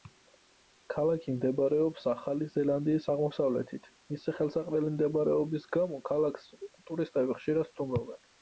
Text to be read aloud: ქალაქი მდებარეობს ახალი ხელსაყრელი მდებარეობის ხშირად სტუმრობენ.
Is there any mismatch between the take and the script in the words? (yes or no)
yes